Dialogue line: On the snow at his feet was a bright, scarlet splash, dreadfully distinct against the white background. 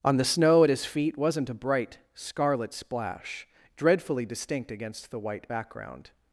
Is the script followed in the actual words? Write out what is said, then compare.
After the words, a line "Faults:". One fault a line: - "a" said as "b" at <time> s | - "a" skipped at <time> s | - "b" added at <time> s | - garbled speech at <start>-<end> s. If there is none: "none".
On the snow at his feet wasn't a bright, scarlet splash, dreadfully distinct against the white background.
Faults:
- "was" said as "wasn't" at 1.2 s